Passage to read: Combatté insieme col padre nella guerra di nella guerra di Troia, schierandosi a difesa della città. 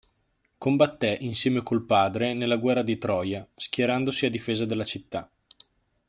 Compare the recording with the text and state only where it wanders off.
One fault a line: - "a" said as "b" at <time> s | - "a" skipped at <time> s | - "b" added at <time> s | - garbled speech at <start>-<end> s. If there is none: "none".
- "nella guerra di" skipped at 3.0 s